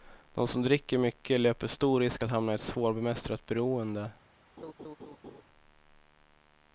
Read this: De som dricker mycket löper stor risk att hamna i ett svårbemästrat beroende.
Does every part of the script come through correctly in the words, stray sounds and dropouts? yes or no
no